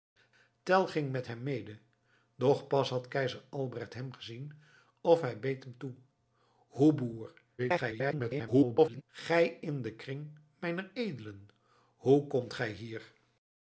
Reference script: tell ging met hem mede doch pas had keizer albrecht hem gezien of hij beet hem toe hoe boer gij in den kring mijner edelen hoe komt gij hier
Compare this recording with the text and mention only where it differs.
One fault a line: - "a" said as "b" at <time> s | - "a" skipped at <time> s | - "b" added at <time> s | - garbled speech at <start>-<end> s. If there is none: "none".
- garbled speech at 7.6-9.0 s